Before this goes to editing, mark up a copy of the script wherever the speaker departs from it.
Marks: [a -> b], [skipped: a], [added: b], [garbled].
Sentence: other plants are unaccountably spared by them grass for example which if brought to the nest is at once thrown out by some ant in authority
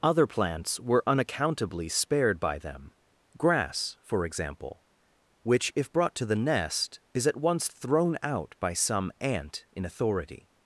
other plants [are -> were] unaccountably spared by them grass for example which if brought to the nest is at once thrown out by some ant in authority